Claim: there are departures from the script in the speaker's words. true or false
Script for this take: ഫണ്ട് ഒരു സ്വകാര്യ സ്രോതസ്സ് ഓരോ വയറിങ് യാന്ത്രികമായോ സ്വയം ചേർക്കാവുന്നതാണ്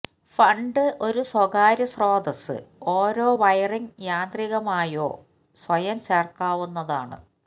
false